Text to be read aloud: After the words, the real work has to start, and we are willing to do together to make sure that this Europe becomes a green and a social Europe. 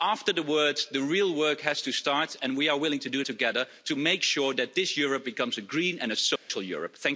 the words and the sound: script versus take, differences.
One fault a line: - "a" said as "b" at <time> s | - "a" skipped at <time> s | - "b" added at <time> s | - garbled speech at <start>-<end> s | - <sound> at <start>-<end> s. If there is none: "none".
- dropout at 6.4-6.5 s